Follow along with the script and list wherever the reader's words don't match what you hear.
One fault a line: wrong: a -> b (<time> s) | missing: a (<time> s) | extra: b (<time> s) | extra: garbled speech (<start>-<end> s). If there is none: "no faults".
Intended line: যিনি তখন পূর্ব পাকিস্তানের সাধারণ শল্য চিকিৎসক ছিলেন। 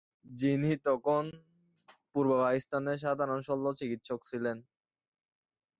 no faults